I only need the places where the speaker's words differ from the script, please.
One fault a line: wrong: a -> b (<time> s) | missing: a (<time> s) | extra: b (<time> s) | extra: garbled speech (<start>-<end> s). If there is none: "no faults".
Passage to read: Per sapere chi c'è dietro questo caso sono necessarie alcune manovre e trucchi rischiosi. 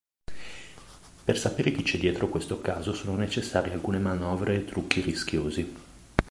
no faults